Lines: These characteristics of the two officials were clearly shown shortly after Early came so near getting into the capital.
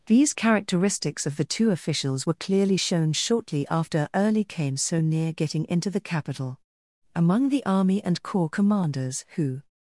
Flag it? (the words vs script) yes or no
yes